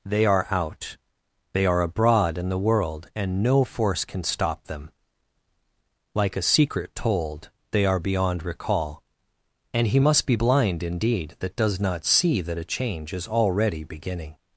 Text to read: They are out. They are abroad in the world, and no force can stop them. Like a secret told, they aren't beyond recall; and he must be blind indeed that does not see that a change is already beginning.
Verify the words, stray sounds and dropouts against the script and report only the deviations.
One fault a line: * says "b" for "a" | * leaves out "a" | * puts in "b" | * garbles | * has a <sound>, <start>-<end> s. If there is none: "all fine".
* says "are" for "aren't"